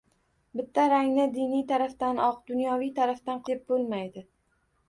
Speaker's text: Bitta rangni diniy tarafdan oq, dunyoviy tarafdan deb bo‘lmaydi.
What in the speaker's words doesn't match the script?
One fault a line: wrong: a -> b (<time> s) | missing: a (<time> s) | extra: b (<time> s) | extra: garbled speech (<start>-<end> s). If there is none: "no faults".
no faults